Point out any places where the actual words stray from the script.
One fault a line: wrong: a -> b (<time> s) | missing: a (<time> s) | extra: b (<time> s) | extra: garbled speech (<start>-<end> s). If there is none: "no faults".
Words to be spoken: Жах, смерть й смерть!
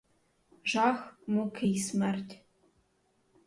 wrong: смерть -> муки (1.3 s)